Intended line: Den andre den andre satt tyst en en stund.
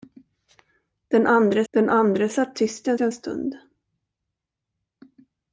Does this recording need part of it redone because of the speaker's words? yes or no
no